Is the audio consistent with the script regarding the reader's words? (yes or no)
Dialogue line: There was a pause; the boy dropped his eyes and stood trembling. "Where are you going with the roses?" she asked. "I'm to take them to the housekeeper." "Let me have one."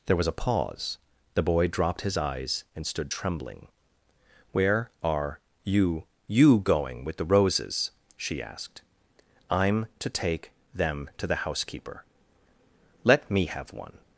no